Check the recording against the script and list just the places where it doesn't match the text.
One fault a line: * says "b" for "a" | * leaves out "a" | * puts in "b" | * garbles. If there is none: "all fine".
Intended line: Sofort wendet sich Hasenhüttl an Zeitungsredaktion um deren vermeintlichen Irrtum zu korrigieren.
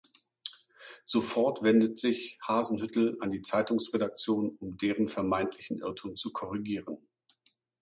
* puts in "die"